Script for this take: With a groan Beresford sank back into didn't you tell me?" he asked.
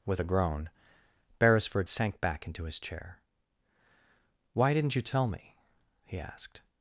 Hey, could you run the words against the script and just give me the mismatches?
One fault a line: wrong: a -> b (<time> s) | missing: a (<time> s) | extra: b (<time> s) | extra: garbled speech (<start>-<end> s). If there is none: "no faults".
extra: his chair Why (2.6 s)